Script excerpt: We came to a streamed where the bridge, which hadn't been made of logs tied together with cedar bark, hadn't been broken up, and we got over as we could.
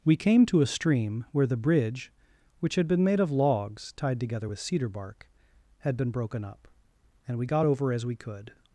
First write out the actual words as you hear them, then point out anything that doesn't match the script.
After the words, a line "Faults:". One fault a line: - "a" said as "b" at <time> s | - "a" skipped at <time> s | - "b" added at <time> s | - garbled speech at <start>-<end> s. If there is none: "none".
We came to a stream where the bridge, which had been made of logs tied together with cedar bark, had been broken up, and we got over as we could.
Faults:
- "streamed" said as "stream" at 0.7 s
- "hadn't" said as "had" at 2.7 s
- "hadn't" said as "had" at 5.8 s